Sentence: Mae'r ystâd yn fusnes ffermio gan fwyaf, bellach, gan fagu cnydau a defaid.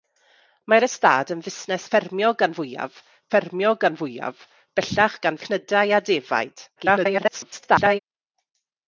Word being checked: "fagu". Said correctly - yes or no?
no